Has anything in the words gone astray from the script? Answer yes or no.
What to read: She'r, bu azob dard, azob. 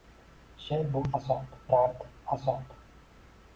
no